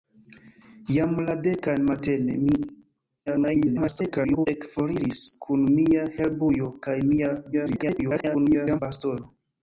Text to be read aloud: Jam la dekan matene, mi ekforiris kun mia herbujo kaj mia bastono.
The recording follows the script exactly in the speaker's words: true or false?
false